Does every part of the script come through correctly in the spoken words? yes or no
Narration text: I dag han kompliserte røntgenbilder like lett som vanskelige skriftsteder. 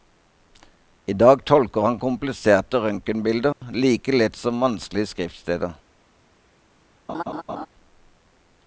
no